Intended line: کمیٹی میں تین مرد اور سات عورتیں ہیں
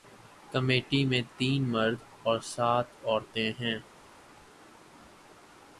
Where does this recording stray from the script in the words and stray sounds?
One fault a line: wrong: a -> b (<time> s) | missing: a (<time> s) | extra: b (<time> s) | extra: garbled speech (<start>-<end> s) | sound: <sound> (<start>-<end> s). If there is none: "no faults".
no faults